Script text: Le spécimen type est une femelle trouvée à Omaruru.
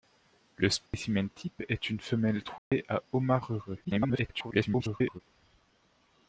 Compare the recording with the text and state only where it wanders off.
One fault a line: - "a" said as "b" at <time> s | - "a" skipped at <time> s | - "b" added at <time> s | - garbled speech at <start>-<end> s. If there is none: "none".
- garbled speech at 3.8-5.2 s